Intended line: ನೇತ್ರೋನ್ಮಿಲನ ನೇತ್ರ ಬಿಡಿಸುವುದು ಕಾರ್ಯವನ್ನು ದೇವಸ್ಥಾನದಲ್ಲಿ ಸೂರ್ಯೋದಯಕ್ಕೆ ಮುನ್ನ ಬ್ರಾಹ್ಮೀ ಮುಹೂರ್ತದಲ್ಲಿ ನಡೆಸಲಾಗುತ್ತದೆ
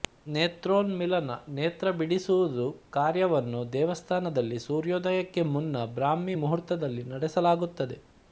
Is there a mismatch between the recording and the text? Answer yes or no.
no